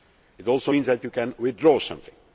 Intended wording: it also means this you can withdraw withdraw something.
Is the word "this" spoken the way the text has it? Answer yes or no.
no